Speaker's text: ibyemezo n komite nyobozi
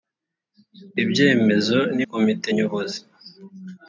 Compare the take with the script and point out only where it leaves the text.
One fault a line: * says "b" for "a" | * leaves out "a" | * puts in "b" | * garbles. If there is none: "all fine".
all fine